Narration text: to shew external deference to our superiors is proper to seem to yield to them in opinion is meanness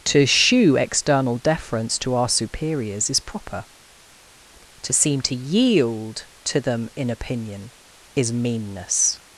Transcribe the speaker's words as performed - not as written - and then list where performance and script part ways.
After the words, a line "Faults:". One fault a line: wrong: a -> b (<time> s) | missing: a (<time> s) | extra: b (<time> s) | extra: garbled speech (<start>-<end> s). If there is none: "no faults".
to shew external deference to our superiors is proper to seem to yield to them in opinion is meanness
Faults:
no faults